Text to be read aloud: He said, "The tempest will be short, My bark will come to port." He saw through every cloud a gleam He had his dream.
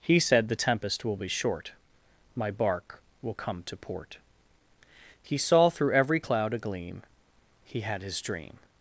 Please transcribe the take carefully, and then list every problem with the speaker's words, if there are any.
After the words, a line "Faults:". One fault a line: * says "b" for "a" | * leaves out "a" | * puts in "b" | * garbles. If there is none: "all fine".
He said, "The tempest will be short, My bark will come to port." He saw through every cloud a gleam He had his dream.
Faults:
all fine